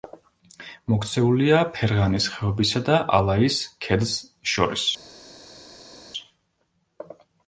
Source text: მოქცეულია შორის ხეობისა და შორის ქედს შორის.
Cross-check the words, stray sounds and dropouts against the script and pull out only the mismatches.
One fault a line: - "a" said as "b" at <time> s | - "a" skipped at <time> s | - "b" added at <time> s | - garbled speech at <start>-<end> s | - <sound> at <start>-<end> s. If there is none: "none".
- "შორის" said as "ფერღანის" at 1.8 s
- "შორის" said as "ალაის" at 3.2 s